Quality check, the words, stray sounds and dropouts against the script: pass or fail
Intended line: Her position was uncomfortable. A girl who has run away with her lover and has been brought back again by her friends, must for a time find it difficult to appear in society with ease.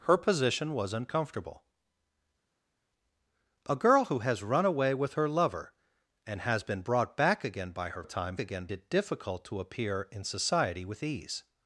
fail